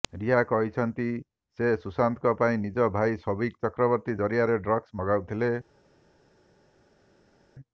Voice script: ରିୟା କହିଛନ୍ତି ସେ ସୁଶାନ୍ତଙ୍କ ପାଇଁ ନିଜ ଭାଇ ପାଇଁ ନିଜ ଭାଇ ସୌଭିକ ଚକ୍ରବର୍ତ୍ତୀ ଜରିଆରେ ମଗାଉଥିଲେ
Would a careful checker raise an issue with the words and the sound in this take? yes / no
yes